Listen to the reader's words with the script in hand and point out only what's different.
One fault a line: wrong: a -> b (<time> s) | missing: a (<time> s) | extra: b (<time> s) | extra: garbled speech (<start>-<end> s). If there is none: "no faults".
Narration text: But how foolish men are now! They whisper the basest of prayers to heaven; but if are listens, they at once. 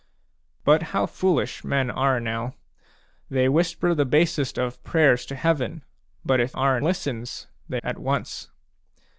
no faults